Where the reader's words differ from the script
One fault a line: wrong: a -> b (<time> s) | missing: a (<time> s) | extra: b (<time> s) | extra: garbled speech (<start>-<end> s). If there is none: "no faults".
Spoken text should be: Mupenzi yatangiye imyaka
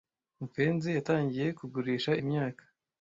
extra: kugurisha (1.6 s)